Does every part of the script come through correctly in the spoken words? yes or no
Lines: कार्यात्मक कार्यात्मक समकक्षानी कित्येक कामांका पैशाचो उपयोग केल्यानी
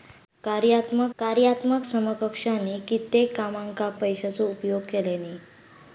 yes